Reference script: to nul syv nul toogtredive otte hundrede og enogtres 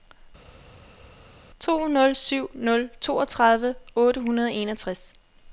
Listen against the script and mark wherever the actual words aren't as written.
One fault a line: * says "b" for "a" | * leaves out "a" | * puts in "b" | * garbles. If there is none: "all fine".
all fine